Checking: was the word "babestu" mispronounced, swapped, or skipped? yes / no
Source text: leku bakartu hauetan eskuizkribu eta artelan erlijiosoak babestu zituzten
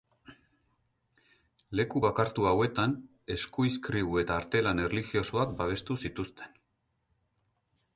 no